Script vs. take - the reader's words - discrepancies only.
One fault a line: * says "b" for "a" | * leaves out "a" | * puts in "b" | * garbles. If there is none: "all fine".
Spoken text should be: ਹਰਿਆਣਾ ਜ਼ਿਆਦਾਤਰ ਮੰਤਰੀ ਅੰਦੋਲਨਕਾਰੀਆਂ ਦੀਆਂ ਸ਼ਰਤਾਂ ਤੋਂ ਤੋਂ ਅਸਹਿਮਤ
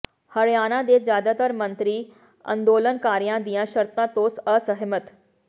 * puts in "ਦੇ"
* leaves out "ਤੋਂ"